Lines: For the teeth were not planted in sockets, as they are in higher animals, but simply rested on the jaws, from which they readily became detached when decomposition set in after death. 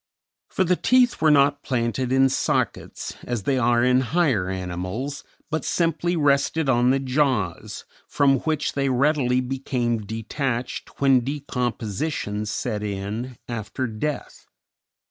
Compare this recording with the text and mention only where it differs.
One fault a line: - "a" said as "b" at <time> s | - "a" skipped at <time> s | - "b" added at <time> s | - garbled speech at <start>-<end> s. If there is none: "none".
none